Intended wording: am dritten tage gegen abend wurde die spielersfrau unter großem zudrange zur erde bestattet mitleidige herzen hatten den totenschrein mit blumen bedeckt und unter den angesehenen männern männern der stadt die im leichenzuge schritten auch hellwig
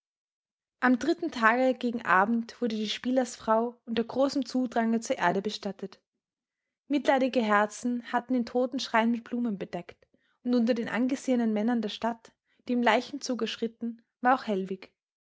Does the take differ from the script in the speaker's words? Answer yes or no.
yes